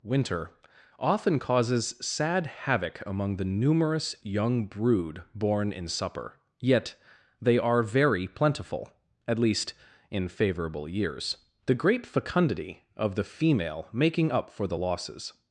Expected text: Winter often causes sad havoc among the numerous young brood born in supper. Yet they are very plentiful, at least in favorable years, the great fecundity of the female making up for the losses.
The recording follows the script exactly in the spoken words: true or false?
true